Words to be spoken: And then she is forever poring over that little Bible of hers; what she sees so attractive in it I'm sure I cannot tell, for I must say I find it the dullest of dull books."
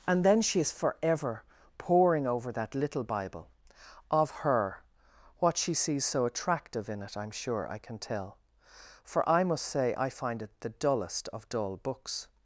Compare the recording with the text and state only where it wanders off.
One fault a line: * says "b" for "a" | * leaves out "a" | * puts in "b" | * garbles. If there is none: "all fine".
* says "her" for "hers"
* says "can" for "cannot"